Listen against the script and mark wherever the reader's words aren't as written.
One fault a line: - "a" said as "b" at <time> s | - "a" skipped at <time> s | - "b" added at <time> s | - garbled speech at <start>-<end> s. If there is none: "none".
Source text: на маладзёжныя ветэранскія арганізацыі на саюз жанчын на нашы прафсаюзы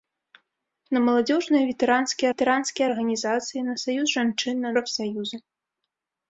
- "ветэранскія" added at 2.3 s
- "нашы" skipped at 4.7 s